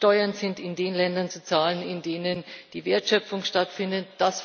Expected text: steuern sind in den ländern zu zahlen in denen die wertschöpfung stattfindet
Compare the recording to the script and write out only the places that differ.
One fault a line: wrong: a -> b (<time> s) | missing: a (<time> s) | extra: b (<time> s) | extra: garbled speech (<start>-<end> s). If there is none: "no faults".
no faults